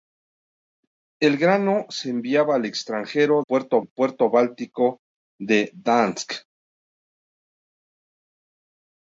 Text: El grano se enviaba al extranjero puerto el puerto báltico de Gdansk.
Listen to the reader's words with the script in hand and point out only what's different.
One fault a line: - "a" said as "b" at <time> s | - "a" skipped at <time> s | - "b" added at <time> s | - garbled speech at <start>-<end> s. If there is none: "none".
none